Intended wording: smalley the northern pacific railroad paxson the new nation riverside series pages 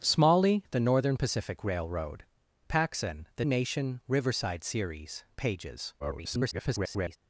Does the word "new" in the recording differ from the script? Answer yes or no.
yes